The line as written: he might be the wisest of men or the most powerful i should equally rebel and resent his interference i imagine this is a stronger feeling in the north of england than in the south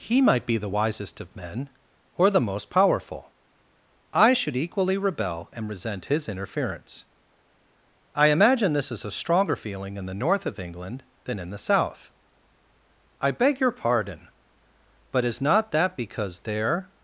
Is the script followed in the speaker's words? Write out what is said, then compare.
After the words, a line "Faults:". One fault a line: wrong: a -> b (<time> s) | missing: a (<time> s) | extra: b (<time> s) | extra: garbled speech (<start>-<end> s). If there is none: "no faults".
he might be the wisest of men or the most powerful i should equally rebel and resent his interference i imagine this is a stronger feeling in the north of england than in the south i beg your pardon but is not that because there
Faults:
extra: i beg your pardon but is not that because there (13.2 s)